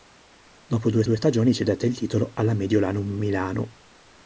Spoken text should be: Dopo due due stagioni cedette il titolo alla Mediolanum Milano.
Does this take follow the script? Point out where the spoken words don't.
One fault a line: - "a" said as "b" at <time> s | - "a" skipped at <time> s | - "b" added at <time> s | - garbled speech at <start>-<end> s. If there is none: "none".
none